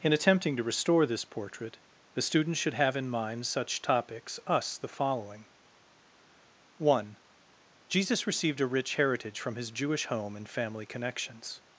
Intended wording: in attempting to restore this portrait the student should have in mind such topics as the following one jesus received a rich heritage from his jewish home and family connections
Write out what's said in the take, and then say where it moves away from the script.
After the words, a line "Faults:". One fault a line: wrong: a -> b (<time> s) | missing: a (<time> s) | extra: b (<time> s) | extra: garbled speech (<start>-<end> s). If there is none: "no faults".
in attempting to restore this portrait the student should have in mind such topics us the following one jesus received a rich heritage from his jewish home and family connections
Faults:
wrong: as -> us (4.5 s)